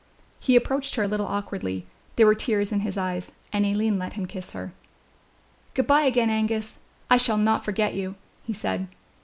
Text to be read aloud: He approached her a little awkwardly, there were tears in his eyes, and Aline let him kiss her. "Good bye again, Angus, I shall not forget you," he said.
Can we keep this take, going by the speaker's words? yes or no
yes